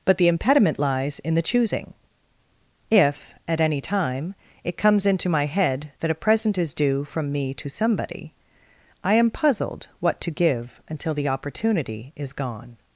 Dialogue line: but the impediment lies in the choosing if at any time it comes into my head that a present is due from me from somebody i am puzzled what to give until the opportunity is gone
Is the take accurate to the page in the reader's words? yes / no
no